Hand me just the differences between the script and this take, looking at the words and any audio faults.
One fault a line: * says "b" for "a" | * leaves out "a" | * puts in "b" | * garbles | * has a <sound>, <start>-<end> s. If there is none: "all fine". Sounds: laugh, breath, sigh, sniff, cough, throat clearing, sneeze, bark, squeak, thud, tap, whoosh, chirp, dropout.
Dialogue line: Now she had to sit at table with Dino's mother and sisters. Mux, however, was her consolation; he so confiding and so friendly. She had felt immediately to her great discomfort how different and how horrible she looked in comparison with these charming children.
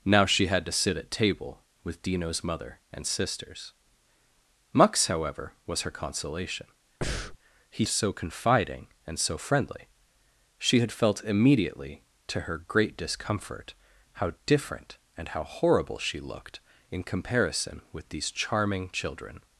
* has a breath, 7.0-7.4 s